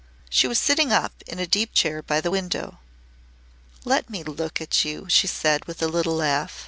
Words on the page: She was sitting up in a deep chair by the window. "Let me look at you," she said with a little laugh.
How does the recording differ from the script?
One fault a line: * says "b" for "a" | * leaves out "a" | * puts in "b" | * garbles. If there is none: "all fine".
all fine